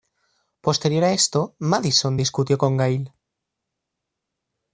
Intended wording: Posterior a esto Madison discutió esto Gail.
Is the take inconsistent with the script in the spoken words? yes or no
yes